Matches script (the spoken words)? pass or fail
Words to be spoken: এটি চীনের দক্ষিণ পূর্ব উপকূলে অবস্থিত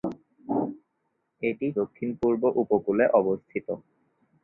fail